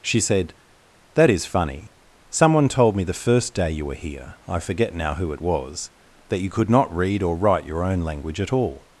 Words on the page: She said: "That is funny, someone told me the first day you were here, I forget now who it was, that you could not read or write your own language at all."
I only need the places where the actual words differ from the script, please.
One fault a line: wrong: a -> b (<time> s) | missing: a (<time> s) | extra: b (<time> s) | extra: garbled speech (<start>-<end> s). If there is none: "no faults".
no faults